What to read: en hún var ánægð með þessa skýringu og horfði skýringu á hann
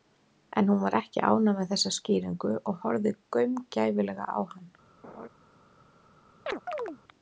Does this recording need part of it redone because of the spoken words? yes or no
yes